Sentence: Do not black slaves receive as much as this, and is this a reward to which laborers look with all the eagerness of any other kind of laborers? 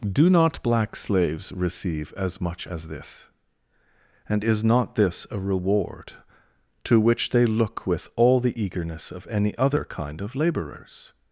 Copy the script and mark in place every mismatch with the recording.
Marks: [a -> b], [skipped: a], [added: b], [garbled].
Do not black slaves receive as much as this, and is [added: not] this a reward to which [laborers -> they] look with all the eagerness of any other kind of laborers?